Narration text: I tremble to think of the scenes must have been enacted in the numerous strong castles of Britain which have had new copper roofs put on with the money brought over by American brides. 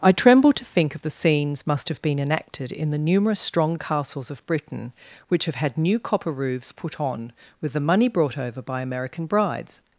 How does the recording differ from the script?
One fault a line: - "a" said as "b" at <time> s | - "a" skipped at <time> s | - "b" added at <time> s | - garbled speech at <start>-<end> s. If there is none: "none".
none